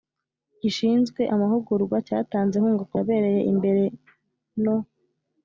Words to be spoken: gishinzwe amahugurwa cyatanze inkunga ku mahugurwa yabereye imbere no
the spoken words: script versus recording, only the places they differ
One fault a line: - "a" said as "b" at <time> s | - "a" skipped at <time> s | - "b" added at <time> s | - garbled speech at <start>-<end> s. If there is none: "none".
- "mahugurwa" skipped at 2.9 s